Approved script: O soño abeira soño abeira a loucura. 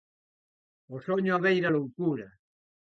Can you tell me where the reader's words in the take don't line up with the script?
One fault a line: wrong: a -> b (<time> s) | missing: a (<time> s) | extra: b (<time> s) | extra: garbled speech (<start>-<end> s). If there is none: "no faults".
missing: soño abeira (1.7 s)